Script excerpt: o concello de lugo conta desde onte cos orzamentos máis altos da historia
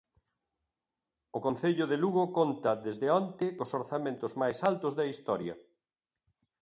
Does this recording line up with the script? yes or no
yes